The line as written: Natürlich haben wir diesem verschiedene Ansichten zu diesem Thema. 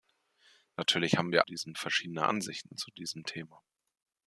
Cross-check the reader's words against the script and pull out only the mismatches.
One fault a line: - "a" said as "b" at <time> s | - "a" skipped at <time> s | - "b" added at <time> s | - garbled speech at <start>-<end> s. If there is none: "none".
none